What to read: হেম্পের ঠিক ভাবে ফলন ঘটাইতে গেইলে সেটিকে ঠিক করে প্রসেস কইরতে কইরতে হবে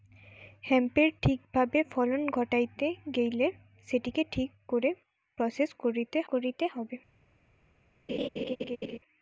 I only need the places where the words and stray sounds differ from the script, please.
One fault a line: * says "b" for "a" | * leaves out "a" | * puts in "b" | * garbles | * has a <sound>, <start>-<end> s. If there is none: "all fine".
* has a laugh, 8.1-9.0 s